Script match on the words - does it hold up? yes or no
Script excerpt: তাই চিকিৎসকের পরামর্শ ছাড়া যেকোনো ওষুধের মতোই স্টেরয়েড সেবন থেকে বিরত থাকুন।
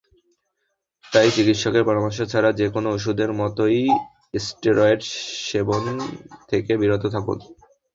yes